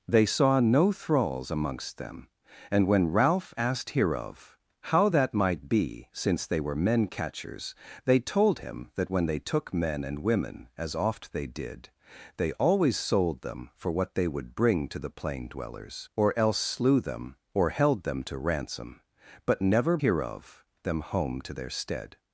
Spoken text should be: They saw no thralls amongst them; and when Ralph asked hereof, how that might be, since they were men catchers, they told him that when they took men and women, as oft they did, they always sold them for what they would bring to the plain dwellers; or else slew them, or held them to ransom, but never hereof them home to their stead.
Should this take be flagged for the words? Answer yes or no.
no